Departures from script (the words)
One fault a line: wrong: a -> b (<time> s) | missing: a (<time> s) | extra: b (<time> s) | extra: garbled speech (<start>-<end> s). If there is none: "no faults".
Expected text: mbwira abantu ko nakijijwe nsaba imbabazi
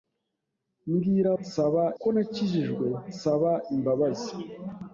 wrong: abantu -> nsaba (1.4 s)